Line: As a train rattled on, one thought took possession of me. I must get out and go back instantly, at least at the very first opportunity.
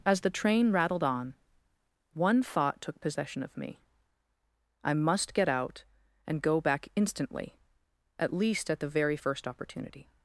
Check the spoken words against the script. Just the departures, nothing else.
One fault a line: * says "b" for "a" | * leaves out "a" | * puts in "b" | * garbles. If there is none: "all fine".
* says "the" for "a"